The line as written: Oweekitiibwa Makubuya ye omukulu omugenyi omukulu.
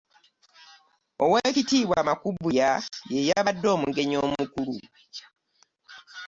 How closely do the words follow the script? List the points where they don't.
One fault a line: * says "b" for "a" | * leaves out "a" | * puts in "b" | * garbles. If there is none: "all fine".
* says "yabadde" for "omukulu"